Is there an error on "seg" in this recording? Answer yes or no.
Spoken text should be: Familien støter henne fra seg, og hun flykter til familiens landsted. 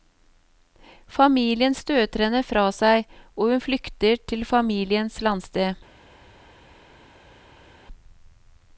no